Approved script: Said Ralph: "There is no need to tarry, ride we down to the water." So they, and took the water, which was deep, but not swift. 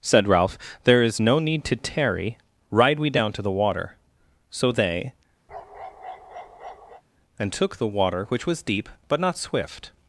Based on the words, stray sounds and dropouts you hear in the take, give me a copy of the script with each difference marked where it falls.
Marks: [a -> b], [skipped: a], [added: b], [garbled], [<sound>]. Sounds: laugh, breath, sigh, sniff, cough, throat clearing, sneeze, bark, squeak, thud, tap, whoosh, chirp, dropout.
Said Ralph: "There is no need to tarry, ride we down to the water." So they, [bark] and took the water, which was deep, but not swift.